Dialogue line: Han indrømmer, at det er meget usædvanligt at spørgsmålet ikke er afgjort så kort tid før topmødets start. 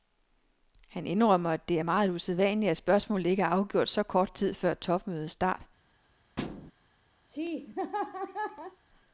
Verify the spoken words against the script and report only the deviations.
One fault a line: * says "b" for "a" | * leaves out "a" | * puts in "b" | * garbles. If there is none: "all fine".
all fine